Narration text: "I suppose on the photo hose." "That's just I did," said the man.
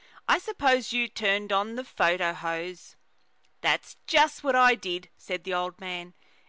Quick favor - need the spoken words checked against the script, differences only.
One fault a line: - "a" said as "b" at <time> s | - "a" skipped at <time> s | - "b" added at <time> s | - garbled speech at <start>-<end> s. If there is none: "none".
- "you turned" added at 0.9 s
- "what" added at 4.5 s
- "old" added at 5.5 s